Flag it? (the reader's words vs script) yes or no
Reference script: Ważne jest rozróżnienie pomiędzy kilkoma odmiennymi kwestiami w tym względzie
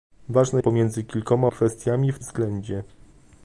yes